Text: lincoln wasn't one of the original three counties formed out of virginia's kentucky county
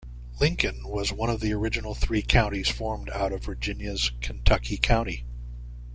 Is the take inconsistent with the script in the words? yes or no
yes